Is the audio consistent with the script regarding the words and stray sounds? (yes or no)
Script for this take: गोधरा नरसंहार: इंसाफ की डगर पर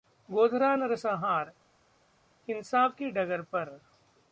yes